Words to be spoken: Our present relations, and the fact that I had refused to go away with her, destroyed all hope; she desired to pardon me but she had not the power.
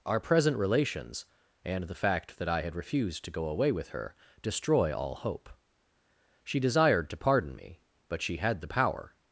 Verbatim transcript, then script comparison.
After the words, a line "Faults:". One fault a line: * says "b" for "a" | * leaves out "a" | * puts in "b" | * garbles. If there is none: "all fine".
Our present relations, and the fact that I had refused to go away with her, destroy all hope; she desired to pardon me but she had the power.
Faults:
* says "destroy" for "destroyed"
* leaves out "not"